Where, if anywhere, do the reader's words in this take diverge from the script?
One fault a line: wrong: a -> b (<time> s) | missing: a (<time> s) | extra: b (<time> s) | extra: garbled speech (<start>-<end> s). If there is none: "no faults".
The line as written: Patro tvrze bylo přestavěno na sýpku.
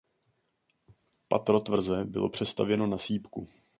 no faults